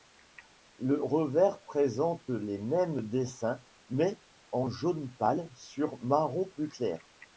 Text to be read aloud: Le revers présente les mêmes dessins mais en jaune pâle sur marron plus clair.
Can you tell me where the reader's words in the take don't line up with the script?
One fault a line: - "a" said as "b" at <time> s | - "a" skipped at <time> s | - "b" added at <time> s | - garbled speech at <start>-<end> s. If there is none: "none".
none